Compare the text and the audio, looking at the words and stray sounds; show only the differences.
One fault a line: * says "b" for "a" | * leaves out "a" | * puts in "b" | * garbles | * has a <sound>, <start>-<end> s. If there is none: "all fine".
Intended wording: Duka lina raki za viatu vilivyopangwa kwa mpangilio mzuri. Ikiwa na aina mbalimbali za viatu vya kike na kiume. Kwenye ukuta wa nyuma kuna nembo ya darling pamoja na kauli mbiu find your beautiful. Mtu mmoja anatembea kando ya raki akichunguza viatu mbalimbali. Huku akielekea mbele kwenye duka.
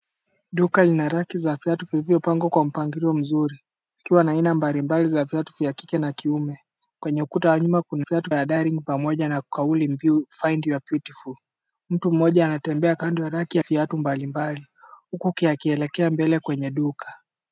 * says "viatu" for "nembo"
* leaves out "akichunguza"